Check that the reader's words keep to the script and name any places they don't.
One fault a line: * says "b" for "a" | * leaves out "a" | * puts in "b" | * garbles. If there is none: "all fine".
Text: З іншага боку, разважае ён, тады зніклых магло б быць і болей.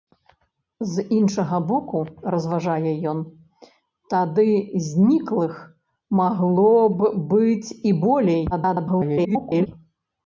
* garbles